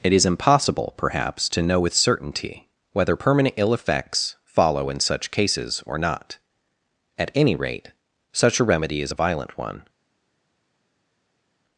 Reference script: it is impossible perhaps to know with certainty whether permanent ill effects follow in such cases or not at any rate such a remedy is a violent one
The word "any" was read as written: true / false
true